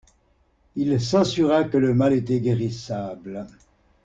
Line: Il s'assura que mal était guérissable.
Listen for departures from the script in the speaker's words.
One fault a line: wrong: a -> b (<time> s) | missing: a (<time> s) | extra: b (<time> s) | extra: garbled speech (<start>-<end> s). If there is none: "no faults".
extra: le (1.8 s)